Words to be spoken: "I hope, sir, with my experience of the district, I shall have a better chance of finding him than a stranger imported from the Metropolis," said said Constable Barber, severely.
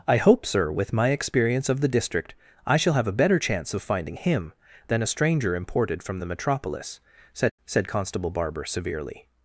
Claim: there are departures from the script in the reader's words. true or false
false